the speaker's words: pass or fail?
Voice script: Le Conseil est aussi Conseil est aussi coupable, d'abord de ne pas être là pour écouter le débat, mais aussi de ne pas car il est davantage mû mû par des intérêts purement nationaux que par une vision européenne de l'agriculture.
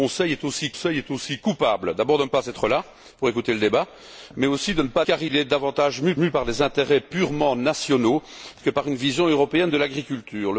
pass